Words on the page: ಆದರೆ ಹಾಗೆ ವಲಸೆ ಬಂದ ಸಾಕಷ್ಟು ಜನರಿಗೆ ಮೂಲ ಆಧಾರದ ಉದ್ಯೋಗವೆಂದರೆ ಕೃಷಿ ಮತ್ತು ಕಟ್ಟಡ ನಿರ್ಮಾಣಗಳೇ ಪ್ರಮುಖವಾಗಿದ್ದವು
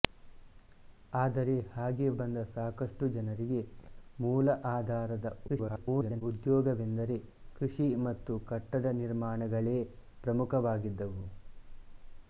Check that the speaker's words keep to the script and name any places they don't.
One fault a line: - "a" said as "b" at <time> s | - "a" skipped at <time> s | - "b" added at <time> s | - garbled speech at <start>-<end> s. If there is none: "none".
- "ವಲಸೆ" skipped at 2.1 s
- garbled speech at 5.5-6.2 s